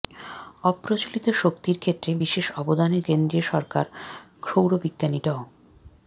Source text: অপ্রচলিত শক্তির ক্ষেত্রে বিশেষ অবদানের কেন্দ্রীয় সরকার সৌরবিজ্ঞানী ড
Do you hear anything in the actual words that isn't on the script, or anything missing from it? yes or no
no